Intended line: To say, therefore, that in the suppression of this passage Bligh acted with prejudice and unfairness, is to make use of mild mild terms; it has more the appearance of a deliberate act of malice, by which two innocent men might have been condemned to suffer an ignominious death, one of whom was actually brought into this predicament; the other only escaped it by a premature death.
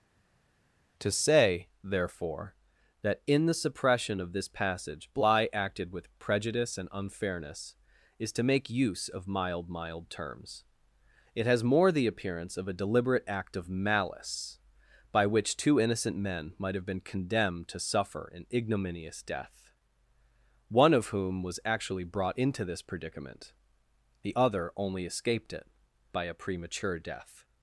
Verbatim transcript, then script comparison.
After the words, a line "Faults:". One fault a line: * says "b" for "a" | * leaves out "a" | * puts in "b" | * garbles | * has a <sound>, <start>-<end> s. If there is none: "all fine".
To say, therefore, that in the suppression of this passage Bligh acted with prejudice and unfairness, is to make use of mild mild terms; it has more the appearance of a deliberate act of malice, by which two innocent men might have been condemned to suffer an ignominious death, one of whom was actually brought into this predicament; the other only escaped it by a premature death.
Faults:
all fine